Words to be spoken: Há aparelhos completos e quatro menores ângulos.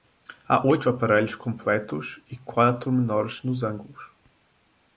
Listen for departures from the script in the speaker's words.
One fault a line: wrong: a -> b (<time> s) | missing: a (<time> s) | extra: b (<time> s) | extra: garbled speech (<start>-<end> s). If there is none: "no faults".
extra: oito (0.7 s)
extra: nos (3.4 s)